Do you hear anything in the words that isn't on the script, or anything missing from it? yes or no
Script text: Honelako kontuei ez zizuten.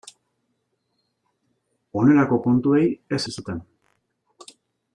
no